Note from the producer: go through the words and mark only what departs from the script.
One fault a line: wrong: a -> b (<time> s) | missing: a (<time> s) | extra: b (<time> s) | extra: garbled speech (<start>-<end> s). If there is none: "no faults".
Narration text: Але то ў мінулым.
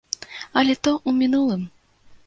no faults